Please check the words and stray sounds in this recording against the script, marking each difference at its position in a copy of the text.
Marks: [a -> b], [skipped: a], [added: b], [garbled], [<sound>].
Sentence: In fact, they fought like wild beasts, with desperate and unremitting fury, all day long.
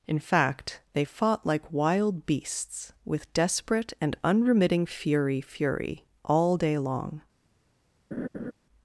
In fact, they fought like wild beasts, with desperate and unremitting fury, [added: fury] all day long. [laugh]